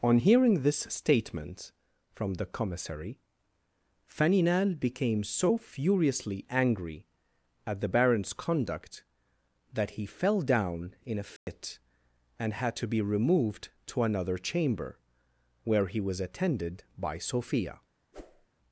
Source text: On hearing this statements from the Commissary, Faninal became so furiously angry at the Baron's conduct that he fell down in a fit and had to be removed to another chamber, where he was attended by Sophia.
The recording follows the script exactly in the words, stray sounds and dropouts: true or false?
false